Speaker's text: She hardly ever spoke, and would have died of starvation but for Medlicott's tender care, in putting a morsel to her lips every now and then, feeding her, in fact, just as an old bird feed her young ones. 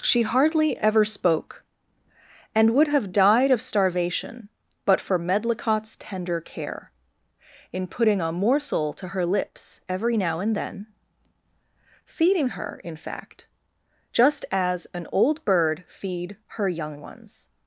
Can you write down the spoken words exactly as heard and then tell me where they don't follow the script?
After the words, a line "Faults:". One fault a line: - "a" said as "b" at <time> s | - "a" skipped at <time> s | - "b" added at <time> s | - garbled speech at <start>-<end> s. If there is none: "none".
She hardly ever spoke, and would have died of starvation but for Medlicott's tender care, in putting a morsel to her lips every now and then, feeding her, in fact, just as an old bird feed her young ones.
Faults:
none